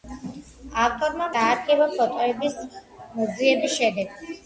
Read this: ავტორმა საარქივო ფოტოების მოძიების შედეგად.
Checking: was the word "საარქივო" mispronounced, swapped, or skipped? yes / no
no